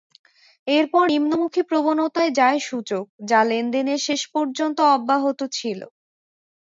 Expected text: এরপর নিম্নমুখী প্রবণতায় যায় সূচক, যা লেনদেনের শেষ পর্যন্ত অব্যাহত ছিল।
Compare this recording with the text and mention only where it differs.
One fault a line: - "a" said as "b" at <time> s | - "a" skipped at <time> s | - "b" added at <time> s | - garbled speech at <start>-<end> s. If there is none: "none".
none